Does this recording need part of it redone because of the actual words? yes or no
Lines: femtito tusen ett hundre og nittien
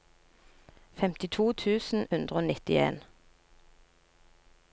yes